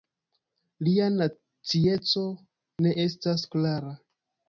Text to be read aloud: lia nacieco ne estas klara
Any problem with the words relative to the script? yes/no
no